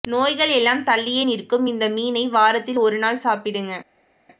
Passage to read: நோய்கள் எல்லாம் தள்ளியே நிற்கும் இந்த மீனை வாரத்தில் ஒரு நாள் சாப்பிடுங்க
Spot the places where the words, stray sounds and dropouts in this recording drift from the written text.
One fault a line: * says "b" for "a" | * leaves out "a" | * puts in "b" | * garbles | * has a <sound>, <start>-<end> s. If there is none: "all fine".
all fine